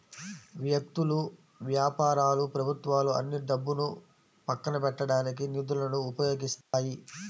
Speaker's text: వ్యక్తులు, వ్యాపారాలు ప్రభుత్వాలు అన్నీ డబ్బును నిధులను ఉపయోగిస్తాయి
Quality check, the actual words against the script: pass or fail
fail